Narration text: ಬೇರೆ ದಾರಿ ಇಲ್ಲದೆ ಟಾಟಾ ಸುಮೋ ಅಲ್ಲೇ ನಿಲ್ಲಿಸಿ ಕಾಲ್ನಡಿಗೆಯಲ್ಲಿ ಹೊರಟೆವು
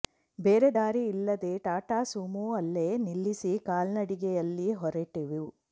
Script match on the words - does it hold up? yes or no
yes